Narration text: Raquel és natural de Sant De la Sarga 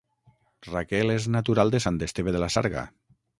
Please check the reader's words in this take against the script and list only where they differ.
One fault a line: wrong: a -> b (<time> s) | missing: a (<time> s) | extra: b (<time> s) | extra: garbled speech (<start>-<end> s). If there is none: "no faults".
extra: Esteve (2.1 s)